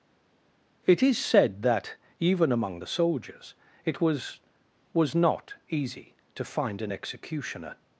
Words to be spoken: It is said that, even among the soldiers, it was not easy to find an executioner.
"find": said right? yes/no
yes